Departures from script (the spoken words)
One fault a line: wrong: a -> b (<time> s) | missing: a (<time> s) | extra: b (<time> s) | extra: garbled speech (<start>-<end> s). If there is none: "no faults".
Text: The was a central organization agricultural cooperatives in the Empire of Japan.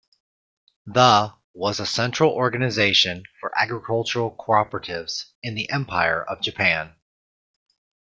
extra: for (3.4 s)